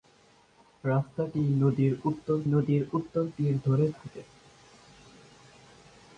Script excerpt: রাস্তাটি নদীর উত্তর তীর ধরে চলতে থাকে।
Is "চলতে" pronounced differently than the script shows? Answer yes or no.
yes